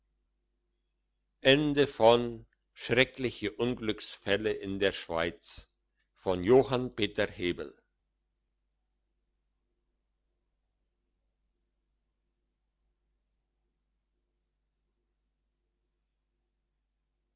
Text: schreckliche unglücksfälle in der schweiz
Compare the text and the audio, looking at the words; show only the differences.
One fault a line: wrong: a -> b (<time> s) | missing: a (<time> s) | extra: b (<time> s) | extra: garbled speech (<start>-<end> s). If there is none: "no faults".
no faults